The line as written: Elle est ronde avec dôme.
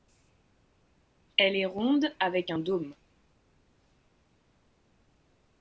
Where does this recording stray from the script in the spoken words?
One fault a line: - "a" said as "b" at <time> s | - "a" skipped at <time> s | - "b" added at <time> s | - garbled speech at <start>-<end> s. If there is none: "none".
- "un" added at 2.5 s